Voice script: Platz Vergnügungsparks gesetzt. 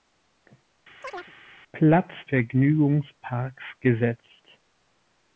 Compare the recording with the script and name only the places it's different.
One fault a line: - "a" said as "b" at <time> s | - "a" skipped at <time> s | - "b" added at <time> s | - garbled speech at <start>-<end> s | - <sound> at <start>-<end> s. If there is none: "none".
- chirp at 1.0-1.3 s